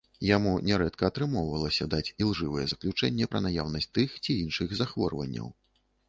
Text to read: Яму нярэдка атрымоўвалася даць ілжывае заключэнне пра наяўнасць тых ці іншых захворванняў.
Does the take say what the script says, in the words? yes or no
yes